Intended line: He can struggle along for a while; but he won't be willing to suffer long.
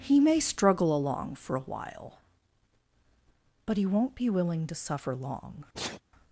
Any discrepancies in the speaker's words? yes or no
yes